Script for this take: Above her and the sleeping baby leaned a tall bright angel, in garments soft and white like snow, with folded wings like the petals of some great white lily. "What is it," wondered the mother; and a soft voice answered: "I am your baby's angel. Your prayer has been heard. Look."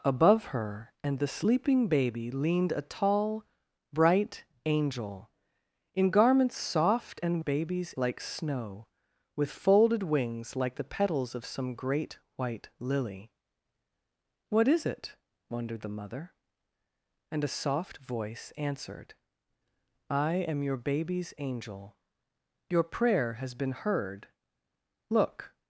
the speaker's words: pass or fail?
fail